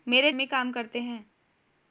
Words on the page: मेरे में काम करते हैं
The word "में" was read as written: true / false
true